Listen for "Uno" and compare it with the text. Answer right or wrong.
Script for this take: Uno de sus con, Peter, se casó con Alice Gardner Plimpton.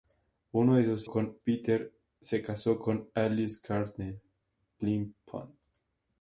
right